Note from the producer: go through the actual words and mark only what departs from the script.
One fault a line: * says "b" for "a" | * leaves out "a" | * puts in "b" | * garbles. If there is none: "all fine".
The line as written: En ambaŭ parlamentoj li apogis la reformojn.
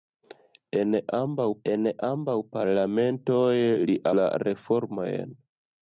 * puts in "en ambaŭ"
* leaves out "apogis"